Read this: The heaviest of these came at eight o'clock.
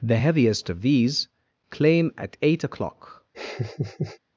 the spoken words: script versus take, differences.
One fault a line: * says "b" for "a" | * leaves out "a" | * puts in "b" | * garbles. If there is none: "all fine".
* says "claim" for "came"